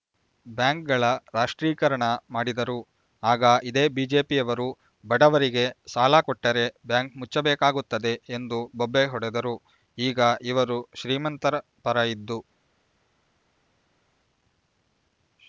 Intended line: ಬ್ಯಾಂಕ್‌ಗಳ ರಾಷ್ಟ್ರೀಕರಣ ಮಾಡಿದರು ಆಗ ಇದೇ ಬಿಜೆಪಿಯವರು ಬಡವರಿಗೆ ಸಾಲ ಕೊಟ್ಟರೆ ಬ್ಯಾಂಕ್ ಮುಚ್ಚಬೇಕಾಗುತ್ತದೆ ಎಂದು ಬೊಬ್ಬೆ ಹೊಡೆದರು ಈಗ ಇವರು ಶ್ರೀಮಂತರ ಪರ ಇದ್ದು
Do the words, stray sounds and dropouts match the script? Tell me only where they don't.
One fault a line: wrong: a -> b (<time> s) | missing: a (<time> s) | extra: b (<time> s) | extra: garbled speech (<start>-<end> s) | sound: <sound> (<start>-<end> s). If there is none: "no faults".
no faults